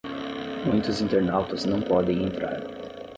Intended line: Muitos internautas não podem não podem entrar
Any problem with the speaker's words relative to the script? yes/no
yes